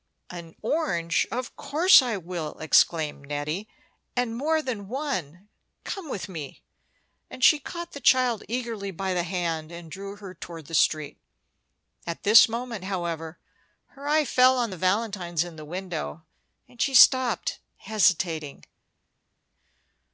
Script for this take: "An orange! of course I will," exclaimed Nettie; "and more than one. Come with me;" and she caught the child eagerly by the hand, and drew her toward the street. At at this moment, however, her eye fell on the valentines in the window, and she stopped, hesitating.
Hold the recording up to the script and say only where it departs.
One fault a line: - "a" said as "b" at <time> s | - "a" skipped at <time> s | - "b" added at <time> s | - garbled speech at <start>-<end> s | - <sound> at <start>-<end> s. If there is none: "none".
- "at" skipped at 12.2 s